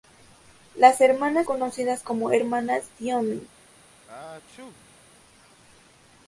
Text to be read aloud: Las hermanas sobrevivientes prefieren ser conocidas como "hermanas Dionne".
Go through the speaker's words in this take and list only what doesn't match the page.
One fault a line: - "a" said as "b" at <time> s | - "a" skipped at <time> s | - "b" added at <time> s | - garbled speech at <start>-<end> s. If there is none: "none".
- "sobrevivientes prefieren ser" skipped at 1.5 s